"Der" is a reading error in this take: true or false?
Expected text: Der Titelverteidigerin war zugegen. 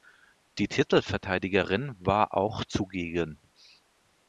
true